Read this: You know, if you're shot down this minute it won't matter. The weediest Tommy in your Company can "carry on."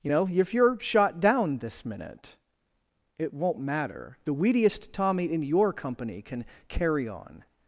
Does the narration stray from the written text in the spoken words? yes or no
no